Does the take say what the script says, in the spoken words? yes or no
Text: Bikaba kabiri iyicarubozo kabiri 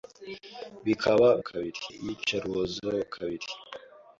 yes